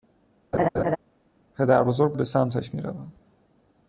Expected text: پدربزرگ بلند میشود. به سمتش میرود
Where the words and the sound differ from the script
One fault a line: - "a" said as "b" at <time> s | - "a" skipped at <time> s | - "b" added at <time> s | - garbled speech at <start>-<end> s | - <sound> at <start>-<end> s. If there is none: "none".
- laugh at 0.5-1.0 s
- "بلند میشود" skipped at 2.1 s